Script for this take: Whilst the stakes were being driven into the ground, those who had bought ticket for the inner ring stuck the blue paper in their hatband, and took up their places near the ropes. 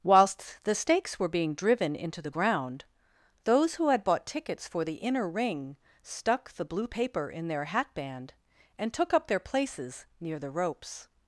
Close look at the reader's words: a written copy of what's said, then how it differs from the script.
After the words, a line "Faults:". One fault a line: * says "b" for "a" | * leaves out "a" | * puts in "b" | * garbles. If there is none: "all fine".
Whilst the stakes were being driven into the ground, those who had bought tickets for the inner ring stuck the blue paper in their hatband, and took up their places near the ropes.
Faults:
* says "tickets" for "ticket"